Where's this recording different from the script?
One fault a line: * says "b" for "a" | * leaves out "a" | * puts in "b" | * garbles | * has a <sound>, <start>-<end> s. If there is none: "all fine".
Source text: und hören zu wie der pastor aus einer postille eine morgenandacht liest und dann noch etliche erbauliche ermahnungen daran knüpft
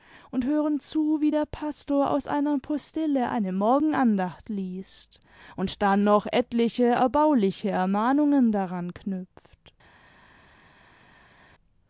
all fine